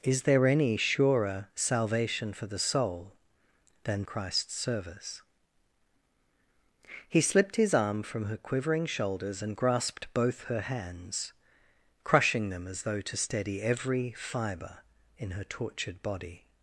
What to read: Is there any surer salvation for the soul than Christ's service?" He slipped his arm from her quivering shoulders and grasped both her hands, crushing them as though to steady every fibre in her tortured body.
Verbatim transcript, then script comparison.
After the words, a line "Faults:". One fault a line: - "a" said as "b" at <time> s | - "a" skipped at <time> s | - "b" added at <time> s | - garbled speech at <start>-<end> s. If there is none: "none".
Is there any surer salvation for the soul than Christ's service?" He slipped his arm from her quivering shoulders and grasped both her hands, crushing them as though to steady every fibre in her tortured body.
Faults:
none